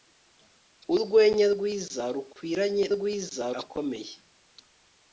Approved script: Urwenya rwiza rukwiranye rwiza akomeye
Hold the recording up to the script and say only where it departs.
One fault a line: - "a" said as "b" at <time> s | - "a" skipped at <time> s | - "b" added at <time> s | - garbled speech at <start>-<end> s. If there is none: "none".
none